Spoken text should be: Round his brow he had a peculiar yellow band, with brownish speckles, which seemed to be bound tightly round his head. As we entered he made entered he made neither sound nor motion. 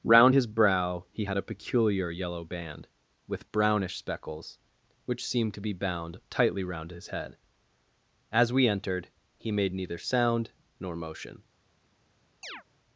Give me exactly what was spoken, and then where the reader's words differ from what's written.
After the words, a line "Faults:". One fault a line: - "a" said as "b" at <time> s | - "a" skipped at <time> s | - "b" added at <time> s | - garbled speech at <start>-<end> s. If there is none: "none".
Round his brow he had a peculiar yellow band, with brownish speckles, which seemed to be bound tightly round his head. As we entered he made neither sound nor motion.
Faults:
- "entered he made" skipped at 9.7 s